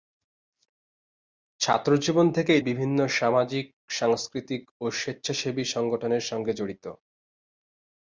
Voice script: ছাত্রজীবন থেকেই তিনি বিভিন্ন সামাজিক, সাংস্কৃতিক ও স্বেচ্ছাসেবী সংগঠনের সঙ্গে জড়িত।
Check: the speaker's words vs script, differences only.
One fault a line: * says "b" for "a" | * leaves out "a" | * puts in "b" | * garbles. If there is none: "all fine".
* leaves out "তিনি"